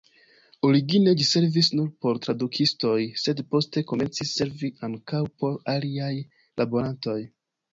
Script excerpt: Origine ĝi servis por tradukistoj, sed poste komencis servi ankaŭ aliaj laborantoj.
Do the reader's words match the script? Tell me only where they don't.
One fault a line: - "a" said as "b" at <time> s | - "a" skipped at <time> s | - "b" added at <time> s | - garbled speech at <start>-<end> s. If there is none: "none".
- "nur" added at 1.8 s
- "por" added at 5.4 s